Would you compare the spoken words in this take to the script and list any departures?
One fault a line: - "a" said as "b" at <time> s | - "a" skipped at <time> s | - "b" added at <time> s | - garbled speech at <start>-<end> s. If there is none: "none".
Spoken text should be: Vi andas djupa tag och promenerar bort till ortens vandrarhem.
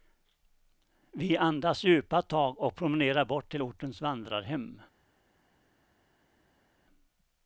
none